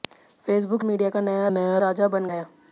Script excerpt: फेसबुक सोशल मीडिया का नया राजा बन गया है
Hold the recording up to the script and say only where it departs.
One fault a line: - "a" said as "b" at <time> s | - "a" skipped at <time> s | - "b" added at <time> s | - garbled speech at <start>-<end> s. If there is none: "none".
- "सोशल" skipped at 0.8 s
- "नया" added at 1.5 s
- "गया" skipped at 2.3 s